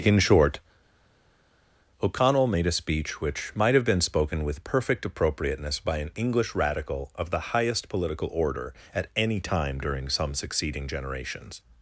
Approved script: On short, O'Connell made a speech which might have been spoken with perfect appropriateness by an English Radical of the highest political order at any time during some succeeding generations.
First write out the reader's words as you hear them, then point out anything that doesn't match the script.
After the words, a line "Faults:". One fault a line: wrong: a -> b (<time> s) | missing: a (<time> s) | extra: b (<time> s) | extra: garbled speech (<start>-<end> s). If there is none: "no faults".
In short, O'Connell made a speech which might have been spoken with perfect appropriateness by an English Radical of the highest political order at any time during some succeeding generations.
Faults:
wrong: On -> In (0.0 s)